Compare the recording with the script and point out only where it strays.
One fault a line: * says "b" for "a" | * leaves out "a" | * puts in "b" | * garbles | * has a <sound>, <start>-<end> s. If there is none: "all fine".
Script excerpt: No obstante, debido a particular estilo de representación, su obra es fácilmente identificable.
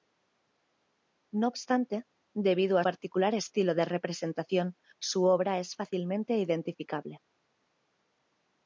all fine